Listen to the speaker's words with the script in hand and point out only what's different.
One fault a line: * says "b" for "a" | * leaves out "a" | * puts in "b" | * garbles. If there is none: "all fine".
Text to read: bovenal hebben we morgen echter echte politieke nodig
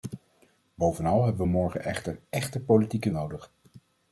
all fine